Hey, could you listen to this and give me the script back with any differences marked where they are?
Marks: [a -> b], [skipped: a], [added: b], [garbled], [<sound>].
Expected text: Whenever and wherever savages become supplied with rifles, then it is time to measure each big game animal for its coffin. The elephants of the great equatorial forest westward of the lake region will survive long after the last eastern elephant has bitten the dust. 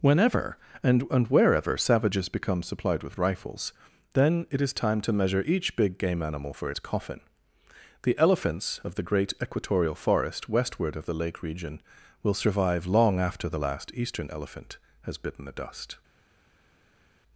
Whenever and [added: and] wherever savages become supplied with rifles, then it is time to measure each big game animal for its coffin. The elephants of the great equatorial forest westward of the lake region will survive long after the last eastern elephant has bitten the dust.